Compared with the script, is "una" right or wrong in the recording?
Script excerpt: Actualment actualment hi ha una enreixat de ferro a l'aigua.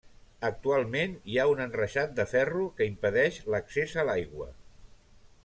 wrong